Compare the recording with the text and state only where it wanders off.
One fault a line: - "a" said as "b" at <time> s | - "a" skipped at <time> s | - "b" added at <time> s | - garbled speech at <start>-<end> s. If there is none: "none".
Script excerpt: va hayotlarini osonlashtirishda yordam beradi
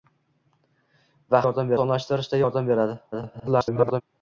- "hayotlarini" said as "yordam" at 1.5 s
- garbled speech at 3.1-4.0 s